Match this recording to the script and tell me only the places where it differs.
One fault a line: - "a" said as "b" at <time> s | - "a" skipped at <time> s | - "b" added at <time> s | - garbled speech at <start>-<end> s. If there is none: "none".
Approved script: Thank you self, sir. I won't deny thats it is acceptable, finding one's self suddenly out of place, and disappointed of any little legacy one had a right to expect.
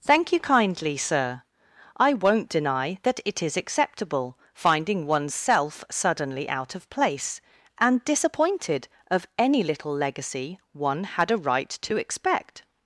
- "self" said as "kindly" at 0.4 s
- "thats" said as "that" at 3.0 s